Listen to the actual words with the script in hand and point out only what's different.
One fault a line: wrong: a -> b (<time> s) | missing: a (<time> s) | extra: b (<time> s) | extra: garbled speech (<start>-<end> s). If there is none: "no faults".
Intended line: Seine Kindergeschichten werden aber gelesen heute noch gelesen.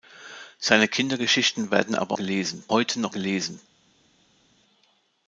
no faults